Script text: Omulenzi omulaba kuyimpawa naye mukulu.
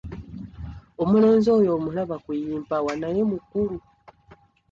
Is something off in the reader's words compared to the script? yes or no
yes